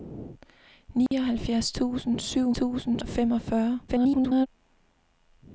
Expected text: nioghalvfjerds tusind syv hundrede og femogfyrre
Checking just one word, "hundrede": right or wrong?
wrong